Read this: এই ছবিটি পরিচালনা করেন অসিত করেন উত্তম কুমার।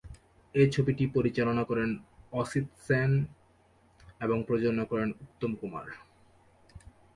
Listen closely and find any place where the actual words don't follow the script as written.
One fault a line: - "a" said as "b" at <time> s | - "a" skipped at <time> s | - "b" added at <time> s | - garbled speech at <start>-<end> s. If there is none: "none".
- "সেন এবং প্রযোজনা" added at 2.9 s